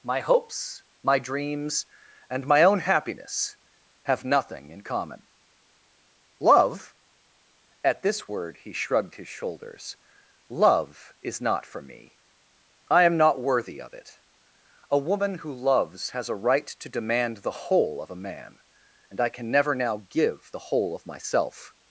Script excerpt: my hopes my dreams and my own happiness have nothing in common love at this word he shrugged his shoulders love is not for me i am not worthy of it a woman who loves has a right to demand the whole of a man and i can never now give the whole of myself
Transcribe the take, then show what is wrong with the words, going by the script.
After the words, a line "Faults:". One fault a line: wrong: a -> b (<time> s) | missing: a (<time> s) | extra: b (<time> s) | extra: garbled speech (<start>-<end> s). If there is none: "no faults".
my hopes my dreams and my own happiness have nothing in common love at this word he shrugged his shoulders love is not for me i am not worthy of it a woman who loves has a right to demand the whole of a man and i can never now give the whole of myself
Faults:
no faults